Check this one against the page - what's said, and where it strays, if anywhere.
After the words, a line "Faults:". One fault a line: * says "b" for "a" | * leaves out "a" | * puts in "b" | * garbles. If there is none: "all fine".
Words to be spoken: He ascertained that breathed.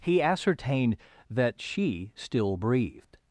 He ascertained that she still breathed.
Faults:
* puts in "she still"